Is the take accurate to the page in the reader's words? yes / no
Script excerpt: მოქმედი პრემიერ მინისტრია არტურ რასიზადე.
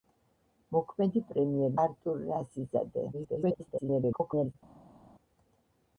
no